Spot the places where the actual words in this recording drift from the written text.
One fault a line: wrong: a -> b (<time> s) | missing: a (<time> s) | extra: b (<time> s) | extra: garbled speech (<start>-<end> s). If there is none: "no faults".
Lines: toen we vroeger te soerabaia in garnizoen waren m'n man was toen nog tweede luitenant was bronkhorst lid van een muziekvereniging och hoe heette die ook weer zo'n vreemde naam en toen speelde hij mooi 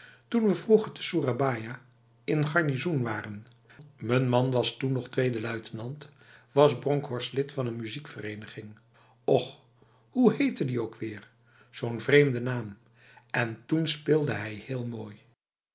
extra: heel (14.5 s)